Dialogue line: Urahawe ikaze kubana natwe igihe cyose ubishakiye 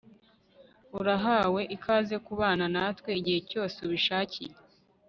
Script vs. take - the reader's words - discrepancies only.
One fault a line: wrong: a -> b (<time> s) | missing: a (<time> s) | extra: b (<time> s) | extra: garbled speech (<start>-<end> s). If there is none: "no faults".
no faults